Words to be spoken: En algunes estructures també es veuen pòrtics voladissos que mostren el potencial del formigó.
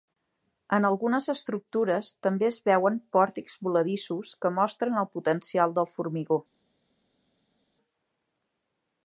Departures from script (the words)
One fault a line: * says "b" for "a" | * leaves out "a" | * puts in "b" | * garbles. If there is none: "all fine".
all fine